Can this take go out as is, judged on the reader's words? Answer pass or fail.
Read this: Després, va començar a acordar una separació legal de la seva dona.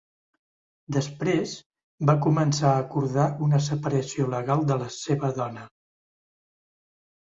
pass